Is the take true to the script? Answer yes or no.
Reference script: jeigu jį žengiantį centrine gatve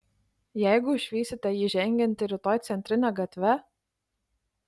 no